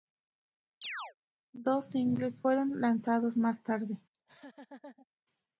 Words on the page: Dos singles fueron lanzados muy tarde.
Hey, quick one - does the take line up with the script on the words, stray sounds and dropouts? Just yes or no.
no